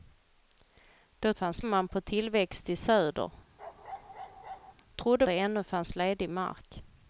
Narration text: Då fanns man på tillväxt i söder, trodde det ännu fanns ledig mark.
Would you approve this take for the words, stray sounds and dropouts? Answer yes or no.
no